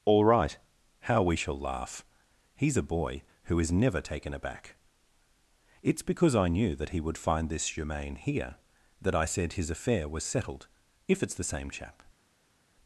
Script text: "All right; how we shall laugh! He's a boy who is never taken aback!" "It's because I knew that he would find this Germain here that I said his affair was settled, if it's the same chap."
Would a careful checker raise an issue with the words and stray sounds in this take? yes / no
no